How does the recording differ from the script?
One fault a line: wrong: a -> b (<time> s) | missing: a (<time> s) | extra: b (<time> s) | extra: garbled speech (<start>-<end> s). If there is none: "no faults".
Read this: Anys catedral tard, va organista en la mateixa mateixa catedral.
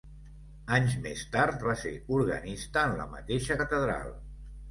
wrong: catedral -> més (1.0 s)
extra: ser (1.9 s)
missing: mateixa (3.6 s)